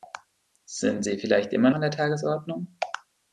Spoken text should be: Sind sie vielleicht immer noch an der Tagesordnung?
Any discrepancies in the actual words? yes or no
yes